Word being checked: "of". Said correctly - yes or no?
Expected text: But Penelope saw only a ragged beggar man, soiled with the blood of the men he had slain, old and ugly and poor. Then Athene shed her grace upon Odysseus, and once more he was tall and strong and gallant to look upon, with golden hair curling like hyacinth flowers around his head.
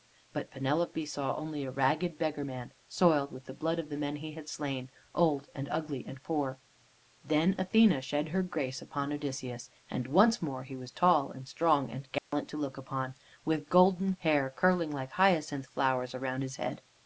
yes